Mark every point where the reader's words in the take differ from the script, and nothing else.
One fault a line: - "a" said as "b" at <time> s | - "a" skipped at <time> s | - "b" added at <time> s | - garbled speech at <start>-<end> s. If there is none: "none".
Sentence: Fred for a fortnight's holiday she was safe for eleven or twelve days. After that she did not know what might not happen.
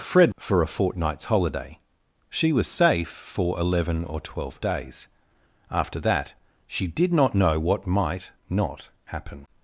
none